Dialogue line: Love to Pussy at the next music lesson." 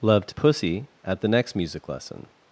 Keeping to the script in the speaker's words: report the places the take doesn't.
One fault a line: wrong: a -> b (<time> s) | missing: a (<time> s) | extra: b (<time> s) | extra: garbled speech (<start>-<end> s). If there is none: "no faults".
no faults